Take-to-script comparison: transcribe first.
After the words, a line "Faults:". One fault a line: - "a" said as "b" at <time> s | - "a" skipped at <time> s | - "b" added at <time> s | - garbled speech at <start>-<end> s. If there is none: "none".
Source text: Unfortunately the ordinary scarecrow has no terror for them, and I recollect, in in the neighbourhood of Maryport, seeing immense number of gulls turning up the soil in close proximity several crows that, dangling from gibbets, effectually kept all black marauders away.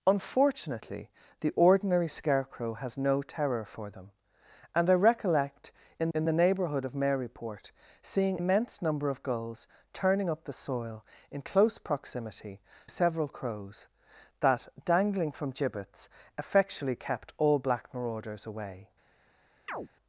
Unfortunately the ordinary scarecrow has no terror for them, and I recollect, in in the neighbourhood of Maryport, seeing immense number of gulls turning up the soil in close proximity several crows that, dangling from gibbets, effectually kept all black marauders away.
Faults:
none